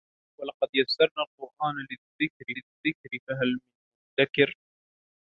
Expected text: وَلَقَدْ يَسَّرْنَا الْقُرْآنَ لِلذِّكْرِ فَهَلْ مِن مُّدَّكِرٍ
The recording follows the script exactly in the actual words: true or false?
false